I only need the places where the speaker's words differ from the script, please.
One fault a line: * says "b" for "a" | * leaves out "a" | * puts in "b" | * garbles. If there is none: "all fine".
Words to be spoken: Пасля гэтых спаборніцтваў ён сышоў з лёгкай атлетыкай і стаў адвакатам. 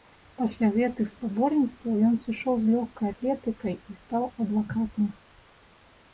all fine